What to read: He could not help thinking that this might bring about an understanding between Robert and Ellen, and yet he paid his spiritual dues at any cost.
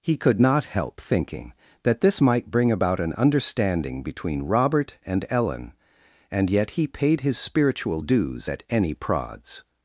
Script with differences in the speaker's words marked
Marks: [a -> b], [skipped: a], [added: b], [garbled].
He could not help thinking that this might bring about an understanding between Robert and Ellen, and yet he paid his spiritual dues at any [cost. -> prods]